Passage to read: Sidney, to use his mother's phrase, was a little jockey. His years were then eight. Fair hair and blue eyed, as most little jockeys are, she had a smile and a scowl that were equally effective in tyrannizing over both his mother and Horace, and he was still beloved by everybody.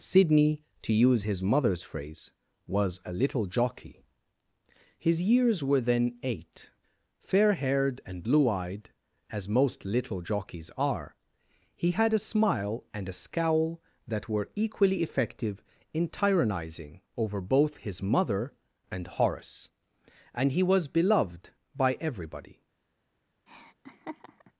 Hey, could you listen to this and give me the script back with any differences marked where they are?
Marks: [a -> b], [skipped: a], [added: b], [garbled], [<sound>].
Sidney, to use his mother's phrase, was a little jockey. His years were then eight. Fair [hair -> haired] and blue eyed, as most little jockeys are, [she -> he] had a smile and a scowl that were equally effective in tyrannizing over both his mother and Horace, and he was [skipped: still] beloved by everybody. [laugh]